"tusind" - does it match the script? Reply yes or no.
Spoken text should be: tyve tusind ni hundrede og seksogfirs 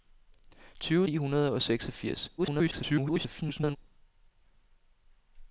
no